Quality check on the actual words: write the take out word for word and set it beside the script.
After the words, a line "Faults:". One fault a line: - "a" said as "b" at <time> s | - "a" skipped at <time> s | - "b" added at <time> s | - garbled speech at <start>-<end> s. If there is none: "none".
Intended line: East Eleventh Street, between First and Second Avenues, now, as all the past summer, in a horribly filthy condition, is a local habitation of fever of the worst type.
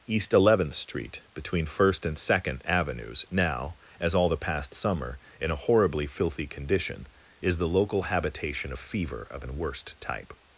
East Eleventh Street, between First and Second Avenues, now, as all the past summer, in a horribly filthy condition, is the local habitation of fever of an worst type.
Faults:
- "a" said as "the" at 7.6 s
- "the" said as "an" at 9.4 s